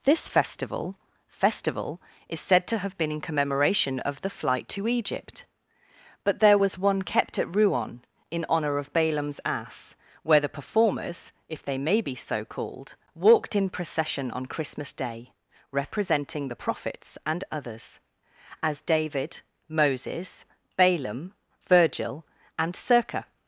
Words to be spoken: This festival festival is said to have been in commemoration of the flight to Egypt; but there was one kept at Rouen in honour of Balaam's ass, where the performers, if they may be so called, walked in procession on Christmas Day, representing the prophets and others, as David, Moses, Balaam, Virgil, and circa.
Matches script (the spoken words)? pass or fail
pass